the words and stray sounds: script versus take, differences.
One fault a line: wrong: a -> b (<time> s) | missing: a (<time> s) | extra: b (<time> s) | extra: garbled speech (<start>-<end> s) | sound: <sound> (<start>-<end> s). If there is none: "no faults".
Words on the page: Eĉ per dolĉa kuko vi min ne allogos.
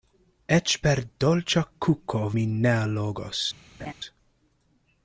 missing: vi (2.2 s)
sound: laugh (3.8-3.9 s)